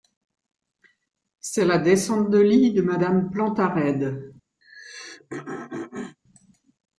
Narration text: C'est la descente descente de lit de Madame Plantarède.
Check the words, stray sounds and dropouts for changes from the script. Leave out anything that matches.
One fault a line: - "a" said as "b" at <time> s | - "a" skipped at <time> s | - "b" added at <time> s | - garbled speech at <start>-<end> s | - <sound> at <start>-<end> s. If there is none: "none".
- "descente" skipped at 2.3 s
- throat clearing at 4.6-6.2 s